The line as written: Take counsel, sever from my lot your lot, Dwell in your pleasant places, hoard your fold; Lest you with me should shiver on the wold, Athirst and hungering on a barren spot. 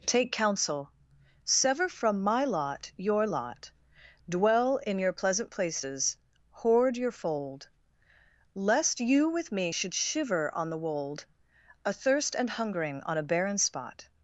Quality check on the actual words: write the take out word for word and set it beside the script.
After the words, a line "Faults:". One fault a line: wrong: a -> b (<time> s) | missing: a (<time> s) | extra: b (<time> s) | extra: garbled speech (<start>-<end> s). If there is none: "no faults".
Take counsel, sever from my lot your lot, Dwell in your pleasant places, hoard your fold; Lest you with me should shiver on the wold, Athirst and hungering on a barren spot.
Faults:
no faults